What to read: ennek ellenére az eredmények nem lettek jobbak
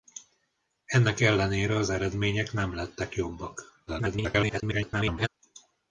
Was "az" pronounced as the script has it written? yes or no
yes